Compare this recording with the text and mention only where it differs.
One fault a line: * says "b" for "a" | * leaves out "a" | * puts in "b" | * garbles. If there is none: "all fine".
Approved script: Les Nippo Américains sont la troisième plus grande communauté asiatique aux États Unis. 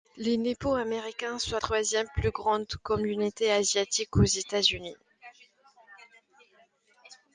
* leaves out "la"